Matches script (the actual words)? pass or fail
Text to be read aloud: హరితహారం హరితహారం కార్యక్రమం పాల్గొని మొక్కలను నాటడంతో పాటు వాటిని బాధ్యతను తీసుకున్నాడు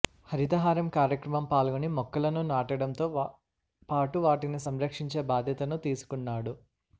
fail